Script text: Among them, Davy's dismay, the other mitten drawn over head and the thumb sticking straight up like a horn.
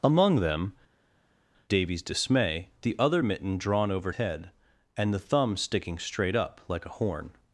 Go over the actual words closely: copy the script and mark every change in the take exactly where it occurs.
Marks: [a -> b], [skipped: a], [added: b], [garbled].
Among them, Davy's dismay, the other mitten drawn over head and the thumb sticking straight up like a horn.